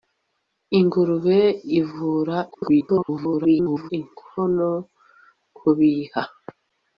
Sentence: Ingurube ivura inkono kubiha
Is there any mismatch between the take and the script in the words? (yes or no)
yes